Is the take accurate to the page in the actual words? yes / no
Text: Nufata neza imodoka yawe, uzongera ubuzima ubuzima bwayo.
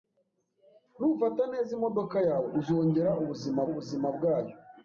yes